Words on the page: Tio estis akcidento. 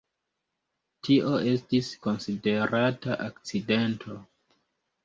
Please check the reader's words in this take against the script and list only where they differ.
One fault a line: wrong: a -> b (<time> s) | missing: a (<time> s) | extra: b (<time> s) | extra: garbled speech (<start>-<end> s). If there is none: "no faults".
extra: konsiderata (2.1 s)